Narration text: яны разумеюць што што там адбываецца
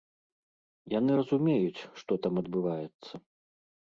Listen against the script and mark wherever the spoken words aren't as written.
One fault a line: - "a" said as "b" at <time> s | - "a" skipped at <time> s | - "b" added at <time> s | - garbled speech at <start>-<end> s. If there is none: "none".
- "што" skipped at 2.1 s